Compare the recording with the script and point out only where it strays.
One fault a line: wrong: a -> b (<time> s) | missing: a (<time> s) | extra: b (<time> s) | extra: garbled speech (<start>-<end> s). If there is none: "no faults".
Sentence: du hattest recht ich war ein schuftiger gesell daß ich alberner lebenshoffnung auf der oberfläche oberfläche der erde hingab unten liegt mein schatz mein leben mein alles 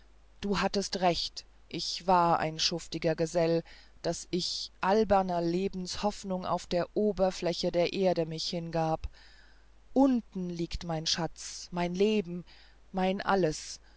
missing: oberfläche (7.7 s)
extra: mich (8.2 s)